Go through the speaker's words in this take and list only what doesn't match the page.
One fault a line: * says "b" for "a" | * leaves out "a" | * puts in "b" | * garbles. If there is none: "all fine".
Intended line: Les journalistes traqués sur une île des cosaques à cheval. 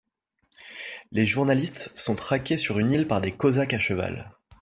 * puts in "sont"
* puts in "par"